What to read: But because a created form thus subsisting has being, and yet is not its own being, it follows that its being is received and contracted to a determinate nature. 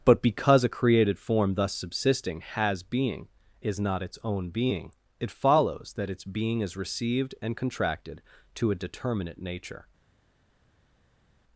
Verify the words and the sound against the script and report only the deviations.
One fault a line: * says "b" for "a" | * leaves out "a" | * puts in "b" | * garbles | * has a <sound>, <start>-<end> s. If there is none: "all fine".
* leaves out "and yet"